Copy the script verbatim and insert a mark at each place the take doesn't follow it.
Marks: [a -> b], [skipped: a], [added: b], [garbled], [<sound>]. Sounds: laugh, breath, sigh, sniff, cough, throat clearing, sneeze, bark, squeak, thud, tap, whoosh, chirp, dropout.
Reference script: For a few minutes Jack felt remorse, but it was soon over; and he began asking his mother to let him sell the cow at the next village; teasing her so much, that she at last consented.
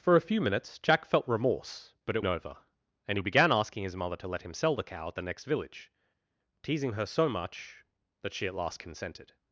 For a few minutes Jack felt remorse, but it [skipped: was soon] over; and he began asking his mother to let him sell the cow at the next village; teasing her so much, that she at last consented.